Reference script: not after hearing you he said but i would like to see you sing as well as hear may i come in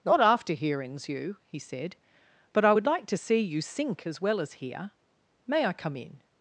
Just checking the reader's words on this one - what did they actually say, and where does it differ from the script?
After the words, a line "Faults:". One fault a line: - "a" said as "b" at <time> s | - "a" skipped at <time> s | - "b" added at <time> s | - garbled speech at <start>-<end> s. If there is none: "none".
not after hearings you he said but i would like to see you sink as well as hear may i come in
Faults:
- "hearing" said as "hearings" at 0.5 s
- "sing" said as "sink" at 3.6 s